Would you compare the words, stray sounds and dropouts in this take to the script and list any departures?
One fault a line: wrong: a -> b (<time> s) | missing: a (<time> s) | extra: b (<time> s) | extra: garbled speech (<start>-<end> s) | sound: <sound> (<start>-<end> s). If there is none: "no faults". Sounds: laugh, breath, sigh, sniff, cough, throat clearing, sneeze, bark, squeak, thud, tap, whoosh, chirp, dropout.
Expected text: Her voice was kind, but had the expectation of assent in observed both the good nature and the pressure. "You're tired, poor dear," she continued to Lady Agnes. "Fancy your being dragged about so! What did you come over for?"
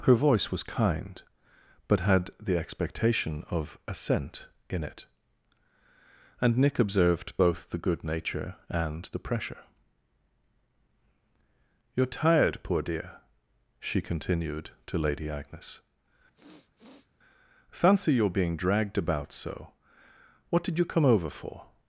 extra: it and Nick (4.8 s)
sound: sniff (16.3-17.1 s)